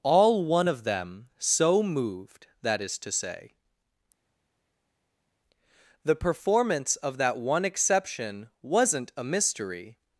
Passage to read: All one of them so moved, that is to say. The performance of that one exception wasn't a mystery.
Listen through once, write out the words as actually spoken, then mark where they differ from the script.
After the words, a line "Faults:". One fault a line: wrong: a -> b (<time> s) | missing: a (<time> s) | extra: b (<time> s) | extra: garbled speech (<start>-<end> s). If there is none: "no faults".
All one of them so moved, that is to say. The performance of that one exception wasn't a mystery.
Faults:
no faults